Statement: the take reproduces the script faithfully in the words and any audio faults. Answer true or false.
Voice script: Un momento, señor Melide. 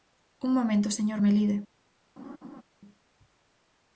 false